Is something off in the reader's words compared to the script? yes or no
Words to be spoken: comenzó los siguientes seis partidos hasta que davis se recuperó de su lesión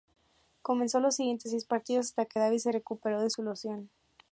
no